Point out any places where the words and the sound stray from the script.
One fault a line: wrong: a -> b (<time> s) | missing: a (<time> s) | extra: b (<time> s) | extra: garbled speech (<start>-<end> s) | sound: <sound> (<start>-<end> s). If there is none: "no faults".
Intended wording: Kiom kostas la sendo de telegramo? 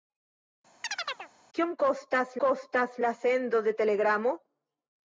sound: chirp (0.8-1.3 s)
extra: kostas (2.4 s)